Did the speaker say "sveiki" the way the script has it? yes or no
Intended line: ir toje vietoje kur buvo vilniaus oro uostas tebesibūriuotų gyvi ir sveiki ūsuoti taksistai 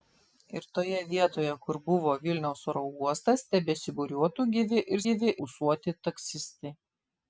no